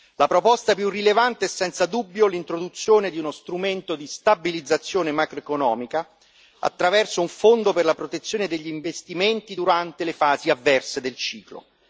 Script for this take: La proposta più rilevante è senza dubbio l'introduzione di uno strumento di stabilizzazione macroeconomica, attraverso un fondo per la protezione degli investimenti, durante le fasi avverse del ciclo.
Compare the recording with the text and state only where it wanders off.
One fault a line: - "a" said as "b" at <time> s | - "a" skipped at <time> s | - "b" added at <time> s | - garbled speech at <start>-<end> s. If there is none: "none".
none